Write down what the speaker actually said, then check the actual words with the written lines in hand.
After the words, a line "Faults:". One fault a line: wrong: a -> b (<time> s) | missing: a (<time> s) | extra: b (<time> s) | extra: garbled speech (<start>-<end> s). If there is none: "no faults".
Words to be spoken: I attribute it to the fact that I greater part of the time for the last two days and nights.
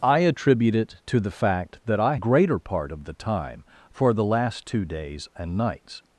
I attribute it to the fact that I greater part of the time for the last two days and nights.
Faults:
no faults